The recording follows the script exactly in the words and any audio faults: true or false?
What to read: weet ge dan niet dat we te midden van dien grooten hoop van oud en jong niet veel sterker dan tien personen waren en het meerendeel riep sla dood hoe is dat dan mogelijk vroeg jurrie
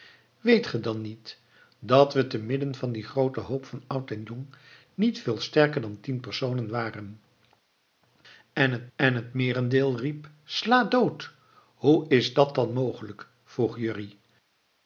false